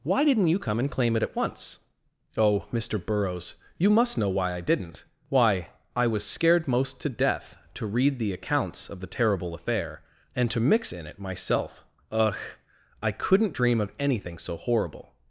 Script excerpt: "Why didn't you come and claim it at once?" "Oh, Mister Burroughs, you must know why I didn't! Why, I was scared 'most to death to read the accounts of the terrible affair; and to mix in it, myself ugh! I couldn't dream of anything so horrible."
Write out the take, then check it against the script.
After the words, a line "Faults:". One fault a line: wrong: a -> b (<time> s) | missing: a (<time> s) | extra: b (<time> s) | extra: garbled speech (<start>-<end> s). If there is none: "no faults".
"Why didn't you come and claim it at once?" "Oh, Mister Burroughs, you must know why I didn't! Why, I was scared 'most to death to read the accounts of the terrible affair; and to mix in it, myself ugh! I couldn't dream of anything so horrible."
Faults:
no faults